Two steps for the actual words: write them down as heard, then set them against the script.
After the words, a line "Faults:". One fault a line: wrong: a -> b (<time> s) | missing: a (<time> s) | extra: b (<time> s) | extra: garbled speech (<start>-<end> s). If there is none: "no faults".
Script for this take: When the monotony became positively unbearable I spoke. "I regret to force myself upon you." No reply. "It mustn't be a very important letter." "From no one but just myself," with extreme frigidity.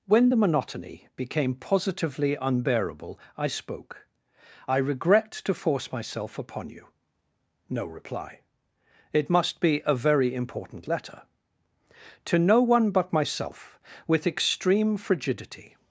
When the monotony became positively unbearable I spoke. "I regret to force myself upon you." No reply. "It must be a very important letter." "To no one but myself," with extreme frigidity.
Faults:
wrong: mustn't -> must (9.3 s)
wrong: From -> To (12.2 s)
missing: just (13.1 s)